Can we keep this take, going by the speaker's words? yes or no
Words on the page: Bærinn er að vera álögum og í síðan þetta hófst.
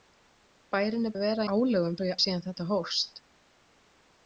yes